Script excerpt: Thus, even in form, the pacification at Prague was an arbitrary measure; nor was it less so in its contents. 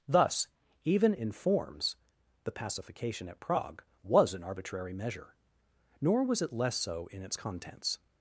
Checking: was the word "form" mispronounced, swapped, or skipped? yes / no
yes